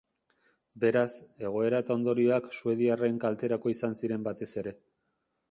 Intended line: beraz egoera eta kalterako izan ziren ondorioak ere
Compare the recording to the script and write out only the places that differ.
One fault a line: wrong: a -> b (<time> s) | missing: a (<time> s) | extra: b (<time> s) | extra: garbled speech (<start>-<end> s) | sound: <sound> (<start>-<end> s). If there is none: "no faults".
extra: ondorioak suediarren (2.0 s)
wrong: ondorioak -> batez (4.3 s)